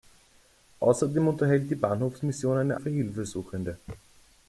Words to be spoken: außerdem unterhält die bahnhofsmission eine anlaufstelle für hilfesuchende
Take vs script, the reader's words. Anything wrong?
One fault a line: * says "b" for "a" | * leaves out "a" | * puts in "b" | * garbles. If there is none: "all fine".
* leaves out "anlaufstelle"